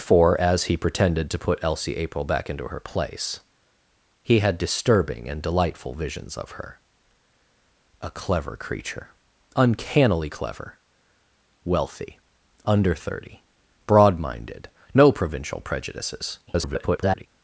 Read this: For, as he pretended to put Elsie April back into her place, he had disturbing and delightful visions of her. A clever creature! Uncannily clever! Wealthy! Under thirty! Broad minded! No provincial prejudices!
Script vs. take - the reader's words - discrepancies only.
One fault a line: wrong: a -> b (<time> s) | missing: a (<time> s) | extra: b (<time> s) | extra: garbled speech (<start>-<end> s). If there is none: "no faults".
extra: garbled speech (16.5-17.3 s)